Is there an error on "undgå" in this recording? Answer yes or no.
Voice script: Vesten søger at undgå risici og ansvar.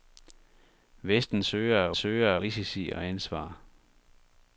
yes